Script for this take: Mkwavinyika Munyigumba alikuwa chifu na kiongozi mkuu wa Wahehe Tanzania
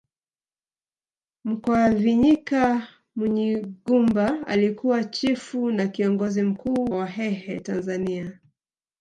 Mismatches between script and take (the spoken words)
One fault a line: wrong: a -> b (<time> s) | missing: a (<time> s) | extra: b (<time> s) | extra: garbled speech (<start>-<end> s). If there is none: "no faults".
missing: wa (6.9 s)